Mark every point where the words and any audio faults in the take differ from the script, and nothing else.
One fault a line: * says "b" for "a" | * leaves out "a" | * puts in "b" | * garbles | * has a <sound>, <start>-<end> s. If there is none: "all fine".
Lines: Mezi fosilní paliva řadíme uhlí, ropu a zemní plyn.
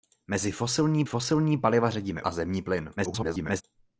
* puts in "fosilní"
* leaves out "uhlí ropu"
* garbles